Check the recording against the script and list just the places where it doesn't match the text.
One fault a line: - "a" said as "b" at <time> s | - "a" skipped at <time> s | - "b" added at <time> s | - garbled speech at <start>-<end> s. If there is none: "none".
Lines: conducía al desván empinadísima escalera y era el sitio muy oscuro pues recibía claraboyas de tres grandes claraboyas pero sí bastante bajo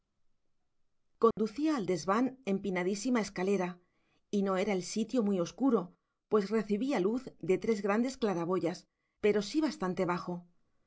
- "no" added at 4.4 s
- "claraboyas" said as "luz" at 7.0 s